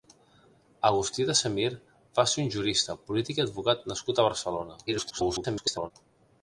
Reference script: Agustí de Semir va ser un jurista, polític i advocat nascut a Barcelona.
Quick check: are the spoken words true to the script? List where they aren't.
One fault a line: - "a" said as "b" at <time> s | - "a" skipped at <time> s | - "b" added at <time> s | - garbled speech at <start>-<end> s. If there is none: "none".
- garbled speech at 4.9-5.9 s